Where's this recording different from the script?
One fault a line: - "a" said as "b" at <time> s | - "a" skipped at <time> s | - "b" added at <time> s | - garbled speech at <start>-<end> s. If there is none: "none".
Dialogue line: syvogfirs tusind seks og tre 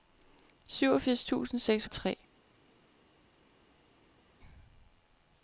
none